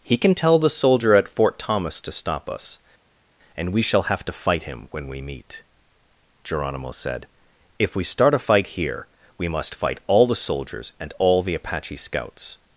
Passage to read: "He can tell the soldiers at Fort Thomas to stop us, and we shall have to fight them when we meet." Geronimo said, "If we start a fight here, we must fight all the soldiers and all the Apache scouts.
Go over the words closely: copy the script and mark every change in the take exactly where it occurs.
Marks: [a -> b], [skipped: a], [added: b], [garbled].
"He can tell the [soldiers -> soldier] at Fort Thomas to stop us, and we shall have to fight [them -> him] when we meet." Geronimo said, "If we start a fight here, we must fight all the soldiers and all the Apache scouts.